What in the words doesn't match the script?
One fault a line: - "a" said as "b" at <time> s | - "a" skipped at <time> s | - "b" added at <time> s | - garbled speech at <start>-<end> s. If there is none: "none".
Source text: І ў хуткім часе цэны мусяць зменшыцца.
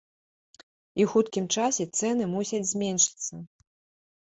none